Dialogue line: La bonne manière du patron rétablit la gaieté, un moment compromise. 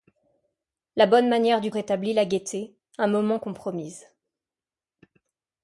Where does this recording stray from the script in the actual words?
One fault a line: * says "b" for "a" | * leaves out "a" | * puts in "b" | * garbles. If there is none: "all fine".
* leaves out "patron"